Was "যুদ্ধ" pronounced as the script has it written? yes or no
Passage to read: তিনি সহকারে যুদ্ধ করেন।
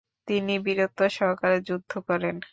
yes